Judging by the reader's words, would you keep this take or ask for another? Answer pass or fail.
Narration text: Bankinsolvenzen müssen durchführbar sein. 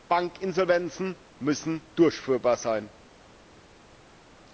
pass